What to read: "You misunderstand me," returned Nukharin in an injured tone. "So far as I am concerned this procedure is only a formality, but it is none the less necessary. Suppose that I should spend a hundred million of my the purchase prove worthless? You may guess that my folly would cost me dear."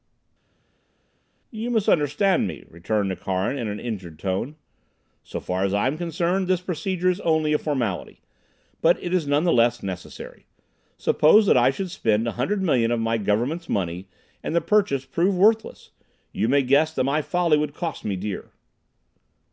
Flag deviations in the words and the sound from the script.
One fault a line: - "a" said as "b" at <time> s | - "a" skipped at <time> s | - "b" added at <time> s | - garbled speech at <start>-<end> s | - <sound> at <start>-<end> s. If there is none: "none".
- "government's money and" added at 13.2 s